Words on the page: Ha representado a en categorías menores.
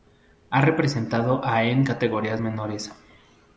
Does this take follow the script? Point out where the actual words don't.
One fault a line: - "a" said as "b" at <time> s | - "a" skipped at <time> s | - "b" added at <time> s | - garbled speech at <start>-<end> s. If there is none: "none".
none